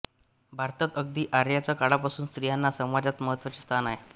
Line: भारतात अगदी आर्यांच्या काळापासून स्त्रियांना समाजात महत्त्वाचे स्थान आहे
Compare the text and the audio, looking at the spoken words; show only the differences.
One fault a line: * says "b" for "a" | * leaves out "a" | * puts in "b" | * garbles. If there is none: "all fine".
all fine